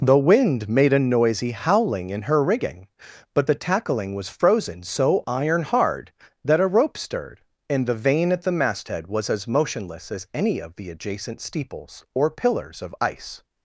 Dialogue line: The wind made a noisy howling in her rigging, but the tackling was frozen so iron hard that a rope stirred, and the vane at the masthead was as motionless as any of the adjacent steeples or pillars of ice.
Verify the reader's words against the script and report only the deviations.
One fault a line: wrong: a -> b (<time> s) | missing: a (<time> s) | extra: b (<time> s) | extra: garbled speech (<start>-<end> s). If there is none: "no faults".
no faults